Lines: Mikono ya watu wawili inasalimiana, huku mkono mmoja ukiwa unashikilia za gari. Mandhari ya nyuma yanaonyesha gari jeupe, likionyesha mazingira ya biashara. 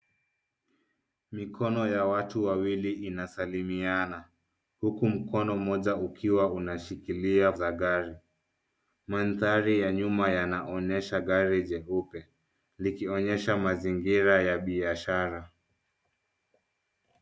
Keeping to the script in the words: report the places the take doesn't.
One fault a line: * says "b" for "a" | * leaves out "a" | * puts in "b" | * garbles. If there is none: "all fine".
all fine